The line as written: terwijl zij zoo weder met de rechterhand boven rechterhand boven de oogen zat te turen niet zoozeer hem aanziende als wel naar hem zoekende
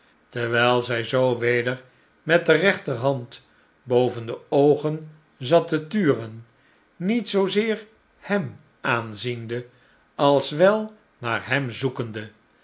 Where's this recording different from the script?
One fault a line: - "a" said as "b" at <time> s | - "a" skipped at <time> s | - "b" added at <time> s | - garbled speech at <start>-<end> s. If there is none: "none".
- "rechterhand boven" skipped at 4.2 s